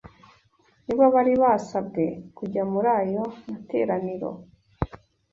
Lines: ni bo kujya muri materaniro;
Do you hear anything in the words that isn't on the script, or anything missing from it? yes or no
yes